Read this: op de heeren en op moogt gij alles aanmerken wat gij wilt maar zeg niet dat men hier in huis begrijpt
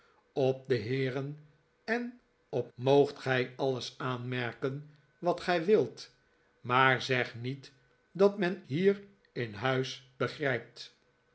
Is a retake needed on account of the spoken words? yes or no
no